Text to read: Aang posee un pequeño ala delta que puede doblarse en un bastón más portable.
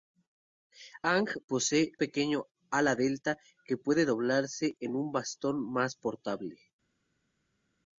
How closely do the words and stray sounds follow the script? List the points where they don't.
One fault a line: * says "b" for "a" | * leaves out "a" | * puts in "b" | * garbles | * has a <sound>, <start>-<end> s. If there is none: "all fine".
* leaves out "un"